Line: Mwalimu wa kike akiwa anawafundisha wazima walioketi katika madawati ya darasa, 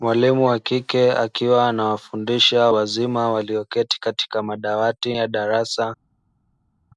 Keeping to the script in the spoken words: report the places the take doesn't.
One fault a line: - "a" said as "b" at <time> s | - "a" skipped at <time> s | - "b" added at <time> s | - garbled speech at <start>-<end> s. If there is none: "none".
none